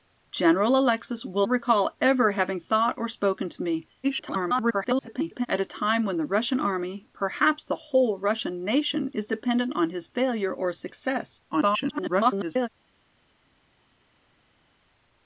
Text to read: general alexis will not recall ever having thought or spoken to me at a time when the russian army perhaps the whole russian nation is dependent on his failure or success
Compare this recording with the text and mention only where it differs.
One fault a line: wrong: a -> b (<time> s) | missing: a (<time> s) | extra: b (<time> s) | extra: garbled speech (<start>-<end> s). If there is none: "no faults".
missing: not (1.4 s)
extra: garbled speech (4.0-5.5 s)
extra: garbled speech (11.5-12.7 s)